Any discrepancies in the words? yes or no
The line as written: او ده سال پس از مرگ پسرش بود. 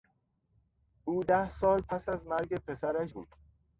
no